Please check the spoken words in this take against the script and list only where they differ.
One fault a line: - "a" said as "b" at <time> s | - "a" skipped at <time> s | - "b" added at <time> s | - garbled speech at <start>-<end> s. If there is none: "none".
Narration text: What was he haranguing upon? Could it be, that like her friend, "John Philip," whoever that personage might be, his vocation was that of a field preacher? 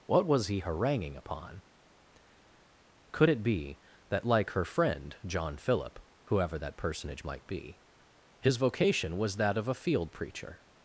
none